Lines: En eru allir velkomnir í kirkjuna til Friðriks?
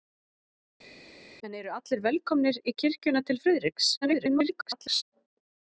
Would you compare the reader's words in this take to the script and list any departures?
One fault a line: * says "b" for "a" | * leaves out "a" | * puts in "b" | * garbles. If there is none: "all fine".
* garbles